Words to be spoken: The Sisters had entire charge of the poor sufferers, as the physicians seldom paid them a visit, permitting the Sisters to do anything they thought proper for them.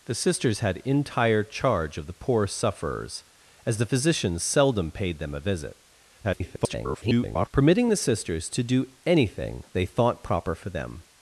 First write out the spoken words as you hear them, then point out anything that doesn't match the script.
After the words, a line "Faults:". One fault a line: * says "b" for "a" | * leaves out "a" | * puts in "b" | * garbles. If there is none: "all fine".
The Sisters had entire charge of the poor sufferers, as the physicians seldom paid them a visit, [garbled] permitting the Sisters to do anything they thought proper for them.
Faults:
* garbles